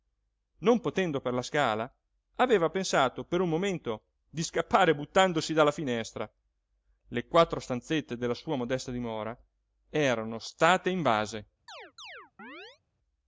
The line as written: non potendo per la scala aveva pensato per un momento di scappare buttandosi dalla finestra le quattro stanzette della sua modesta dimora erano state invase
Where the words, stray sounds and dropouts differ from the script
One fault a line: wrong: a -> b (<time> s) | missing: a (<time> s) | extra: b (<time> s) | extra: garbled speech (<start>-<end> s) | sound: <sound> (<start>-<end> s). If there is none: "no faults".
sound: chirp (11.7-12.8 s)